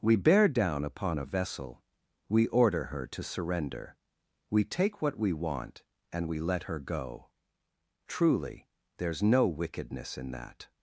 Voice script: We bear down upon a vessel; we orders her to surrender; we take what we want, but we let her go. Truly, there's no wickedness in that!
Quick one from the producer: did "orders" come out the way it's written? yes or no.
no